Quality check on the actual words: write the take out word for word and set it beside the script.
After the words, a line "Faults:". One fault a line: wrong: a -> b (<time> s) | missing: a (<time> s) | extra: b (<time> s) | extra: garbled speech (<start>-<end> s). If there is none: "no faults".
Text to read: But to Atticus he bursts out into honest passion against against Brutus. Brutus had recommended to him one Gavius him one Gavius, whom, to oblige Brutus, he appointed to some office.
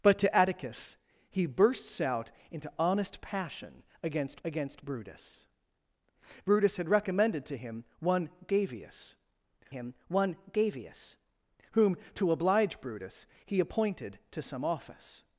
But to Atticus he bursts out into honest passion against against Brutus. Brutus had recommended to him one Gavius him one Gavius, whom, to oblige Brutus, he appointed to some office.
Faults:
no faults